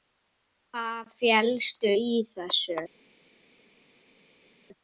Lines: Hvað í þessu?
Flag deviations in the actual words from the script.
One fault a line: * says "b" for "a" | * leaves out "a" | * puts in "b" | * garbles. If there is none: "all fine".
* puts in "felst"